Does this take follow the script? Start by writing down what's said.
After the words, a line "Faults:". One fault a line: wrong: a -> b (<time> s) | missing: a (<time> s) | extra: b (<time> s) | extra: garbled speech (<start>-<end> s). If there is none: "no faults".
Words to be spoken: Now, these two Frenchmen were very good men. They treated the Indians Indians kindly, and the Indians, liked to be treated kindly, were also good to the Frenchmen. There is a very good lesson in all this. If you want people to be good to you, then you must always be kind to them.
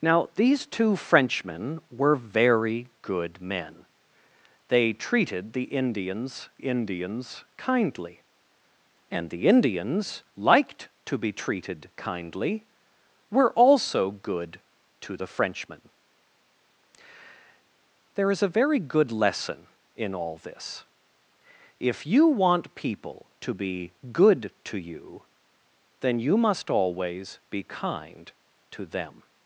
Now, these two Frenchmen were very good men. They treated the Indians Indians kindly, and the Indians, liked to be treated kindly, were also good to the Frenchmen. There is a very good lesson in all this. If you want people to be good to you, then you must always be kind to them.
Faults:
no faults